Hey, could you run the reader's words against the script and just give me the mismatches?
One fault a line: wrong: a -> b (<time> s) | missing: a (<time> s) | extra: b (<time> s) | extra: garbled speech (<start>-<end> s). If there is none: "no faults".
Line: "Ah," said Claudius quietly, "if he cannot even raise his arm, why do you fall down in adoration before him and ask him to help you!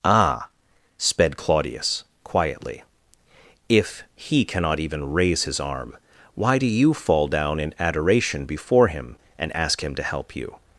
wrong: said -> sped (1.0 s)